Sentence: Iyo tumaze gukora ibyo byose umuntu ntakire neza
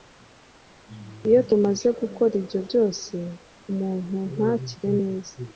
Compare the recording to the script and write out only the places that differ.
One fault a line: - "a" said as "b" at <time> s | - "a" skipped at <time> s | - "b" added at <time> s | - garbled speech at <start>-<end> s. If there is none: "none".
none